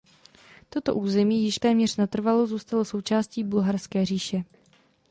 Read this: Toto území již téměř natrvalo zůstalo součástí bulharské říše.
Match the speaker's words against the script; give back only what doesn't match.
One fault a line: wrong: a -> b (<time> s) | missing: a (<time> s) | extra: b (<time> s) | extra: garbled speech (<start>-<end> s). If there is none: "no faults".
no faults